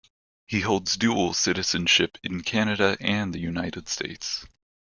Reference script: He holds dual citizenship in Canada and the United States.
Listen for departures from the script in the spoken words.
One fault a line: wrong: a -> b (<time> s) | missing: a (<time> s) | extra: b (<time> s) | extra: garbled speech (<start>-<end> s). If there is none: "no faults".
no faults